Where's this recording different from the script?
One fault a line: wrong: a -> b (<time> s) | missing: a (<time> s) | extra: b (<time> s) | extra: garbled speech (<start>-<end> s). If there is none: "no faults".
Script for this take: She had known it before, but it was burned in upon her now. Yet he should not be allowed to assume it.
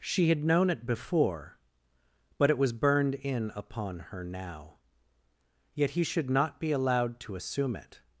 no faults